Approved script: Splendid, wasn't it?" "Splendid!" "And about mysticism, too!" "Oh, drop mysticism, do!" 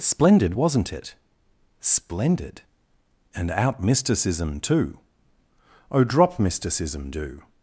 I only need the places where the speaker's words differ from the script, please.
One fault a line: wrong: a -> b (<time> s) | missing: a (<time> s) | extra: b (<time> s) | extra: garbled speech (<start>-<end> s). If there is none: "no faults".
wrong: about -> out (3.5 s)